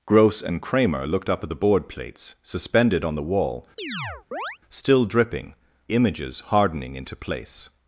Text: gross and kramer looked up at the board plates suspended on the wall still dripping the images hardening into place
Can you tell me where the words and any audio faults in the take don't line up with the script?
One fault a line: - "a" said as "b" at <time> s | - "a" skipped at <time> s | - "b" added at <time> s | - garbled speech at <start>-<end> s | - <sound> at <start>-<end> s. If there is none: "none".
- chirp at 3.8-4.6 s
- "the" skipped at 5.5 s